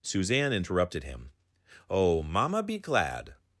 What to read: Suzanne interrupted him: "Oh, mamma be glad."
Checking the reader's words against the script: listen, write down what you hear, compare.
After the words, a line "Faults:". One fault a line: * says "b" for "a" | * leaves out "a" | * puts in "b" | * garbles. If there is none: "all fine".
Suzanne interrupted him: "Oh, mamma be glad."
Faults:
all fine